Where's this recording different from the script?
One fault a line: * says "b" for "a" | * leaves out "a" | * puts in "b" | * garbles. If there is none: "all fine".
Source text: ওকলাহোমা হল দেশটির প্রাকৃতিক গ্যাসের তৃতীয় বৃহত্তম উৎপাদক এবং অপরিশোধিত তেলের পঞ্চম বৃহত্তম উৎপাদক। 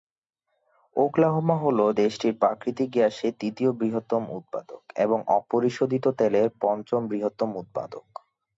all fine